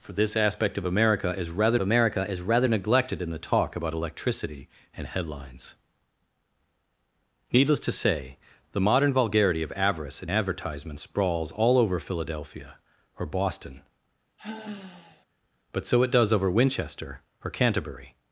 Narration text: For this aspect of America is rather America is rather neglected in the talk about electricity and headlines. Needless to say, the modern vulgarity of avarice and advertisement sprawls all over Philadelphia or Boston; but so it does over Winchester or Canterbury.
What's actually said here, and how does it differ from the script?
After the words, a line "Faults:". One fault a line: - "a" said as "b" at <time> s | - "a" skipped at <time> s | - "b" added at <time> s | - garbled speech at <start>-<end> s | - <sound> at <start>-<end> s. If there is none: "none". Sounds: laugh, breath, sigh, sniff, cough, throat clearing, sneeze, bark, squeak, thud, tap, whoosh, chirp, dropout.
For this aspect of America is rather America is rather neglected in the talk about electricity and headlines. Needless to say, the modern vulgarity of avarice and advertisement sprawls all over Philadelphia or Boston; but so it does over Winchester or Canterbury.
Faults:
- sigh at 14.4-15.3 s